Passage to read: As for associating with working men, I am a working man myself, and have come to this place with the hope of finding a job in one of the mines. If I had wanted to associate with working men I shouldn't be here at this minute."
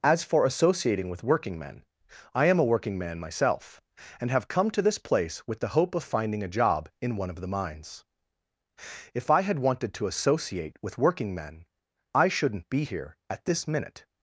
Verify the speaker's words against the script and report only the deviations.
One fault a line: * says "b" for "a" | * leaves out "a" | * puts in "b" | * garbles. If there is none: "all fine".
all fine